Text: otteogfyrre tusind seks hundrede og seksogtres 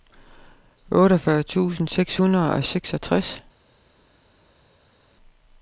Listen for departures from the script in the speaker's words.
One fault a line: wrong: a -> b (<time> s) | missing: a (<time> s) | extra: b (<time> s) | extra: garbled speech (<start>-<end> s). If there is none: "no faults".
no faults